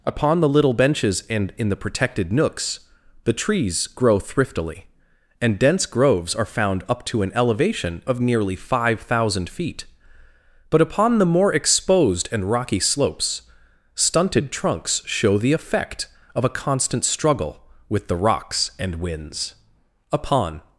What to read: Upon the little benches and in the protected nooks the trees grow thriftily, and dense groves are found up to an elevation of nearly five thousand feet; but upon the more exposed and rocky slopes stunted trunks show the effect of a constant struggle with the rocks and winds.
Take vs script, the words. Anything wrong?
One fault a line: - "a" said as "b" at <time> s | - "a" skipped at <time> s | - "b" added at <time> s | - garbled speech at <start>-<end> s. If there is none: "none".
- "Upon" added at 20.1 s